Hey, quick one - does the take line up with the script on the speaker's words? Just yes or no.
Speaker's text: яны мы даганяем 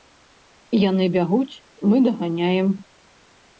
no